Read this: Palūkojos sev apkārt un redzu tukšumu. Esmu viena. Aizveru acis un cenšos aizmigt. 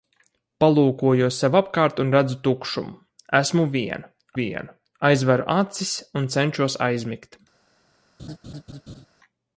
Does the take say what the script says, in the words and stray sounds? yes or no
no